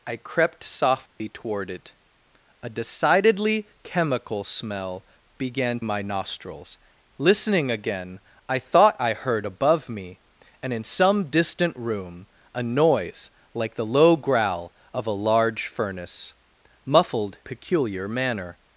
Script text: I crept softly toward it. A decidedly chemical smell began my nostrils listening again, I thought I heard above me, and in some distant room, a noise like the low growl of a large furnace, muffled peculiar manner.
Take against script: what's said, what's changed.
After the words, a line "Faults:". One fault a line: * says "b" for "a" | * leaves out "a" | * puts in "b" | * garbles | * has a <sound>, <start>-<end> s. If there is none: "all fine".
I crept softly toward it. A decidedly chemical smell began my nostrils listening again, I thought I heard above me, and in some distant room, a noise like the low growl of a large furnace, muffled peculiar manner.
Faults:
* has a dropout, 1.1-1.2 s